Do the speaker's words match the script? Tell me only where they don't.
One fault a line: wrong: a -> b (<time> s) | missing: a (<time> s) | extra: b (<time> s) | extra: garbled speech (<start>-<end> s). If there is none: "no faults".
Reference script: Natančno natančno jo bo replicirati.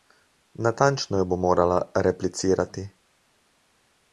missing: natančno (1.2 s)
extra: morala (1.4 s)